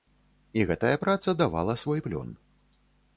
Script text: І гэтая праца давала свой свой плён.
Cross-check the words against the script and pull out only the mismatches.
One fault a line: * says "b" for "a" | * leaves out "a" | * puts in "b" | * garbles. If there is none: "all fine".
* leaves out "свой"